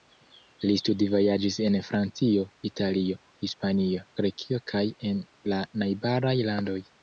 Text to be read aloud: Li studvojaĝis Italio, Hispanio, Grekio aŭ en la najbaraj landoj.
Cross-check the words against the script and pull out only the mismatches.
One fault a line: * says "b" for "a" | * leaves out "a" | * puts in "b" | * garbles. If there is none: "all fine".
* puts in "en Francio"
* says "kaj" for "aŭ"